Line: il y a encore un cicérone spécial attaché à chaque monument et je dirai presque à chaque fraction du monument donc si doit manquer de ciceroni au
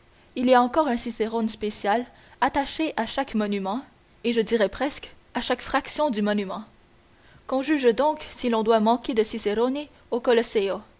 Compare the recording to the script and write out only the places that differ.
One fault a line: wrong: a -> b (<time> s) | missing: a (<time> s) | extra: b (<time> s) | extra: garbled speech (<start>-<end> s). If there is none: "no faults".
extra: qu'on juge (7.5 s)
extra: l'on (8.5 s)